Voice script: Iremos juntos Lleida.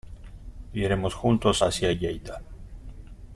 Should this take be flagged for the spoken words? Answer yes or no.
yes